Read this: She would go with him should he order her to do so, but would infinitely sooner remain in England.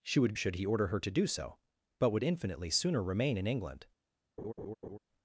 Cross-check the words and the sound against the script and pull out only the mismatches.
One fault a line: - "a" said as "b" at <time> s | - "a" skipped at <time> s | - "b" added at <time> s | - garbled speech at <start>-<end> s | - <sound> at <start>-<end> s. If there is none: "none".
- "go with him" skipped at 0.3 s
- laugh at 4.4-5.0 s